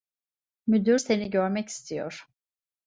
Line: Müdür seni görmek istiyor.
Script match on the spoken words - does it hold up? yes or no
yes